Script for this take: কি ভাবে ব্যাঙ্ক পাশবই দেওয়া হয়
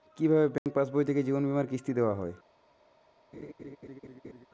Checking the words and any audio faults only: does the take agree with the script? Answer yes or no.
no